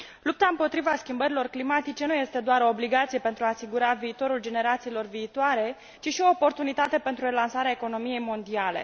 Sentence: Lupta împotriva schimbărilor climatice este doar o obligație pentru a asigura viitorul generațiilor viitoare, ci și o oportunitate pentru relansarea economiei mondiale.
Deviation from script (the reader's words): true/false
true